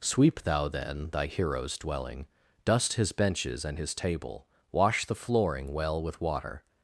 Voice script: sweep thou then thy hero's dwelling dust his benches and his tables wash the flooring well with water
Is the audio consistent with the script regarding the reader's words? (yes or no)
no